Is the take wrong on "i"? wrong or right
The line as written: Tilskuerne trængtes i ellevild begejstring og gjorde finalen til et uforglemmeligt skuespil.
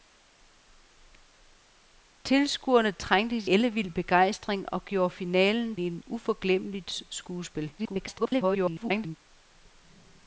wrong